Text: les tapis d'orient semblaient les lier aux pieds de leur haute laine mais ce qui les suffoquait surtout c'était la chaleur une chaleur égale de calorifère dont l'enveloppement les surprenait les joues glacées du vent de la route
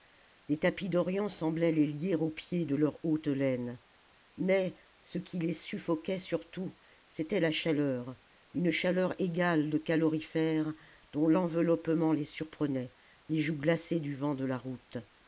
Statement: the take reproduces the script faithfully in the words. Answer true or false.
true